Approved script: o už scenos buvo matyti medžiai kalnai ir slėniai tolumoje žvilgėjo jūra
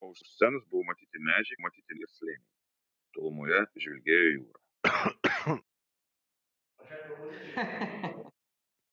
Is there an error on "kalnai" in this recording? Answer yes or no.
yes